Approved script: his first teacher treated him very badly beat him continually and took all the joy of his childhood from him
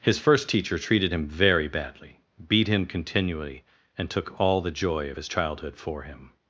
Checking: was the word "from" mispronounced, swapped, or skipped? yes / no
yes